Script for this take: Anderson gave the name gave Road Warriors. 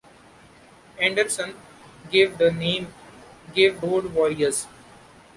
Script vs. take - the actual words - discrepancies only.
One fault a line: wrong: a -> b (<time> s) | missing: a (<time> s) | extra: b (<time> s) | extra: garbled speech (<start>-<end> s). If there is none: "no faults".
no faults